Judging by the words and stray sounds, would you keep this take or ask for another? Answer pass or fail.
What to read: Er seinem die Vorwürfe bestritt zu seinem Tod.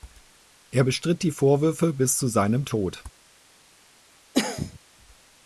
fail